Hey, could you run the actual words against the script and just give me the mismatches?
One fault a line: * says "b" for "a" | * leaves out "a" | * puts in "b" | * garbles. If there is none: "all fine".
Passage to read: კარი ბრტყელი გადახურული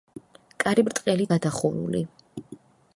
all fine